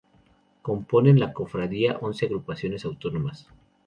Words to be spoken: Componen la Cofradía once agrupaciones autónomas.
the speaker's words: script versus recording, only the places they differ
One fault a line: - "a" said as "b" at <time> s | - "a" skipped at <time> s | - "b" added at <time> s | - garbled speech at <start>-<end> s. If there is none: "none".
none